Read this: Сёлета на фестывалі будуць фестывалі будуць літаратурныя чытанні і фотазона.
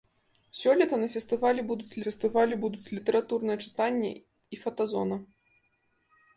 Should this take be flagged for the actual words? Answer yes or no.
no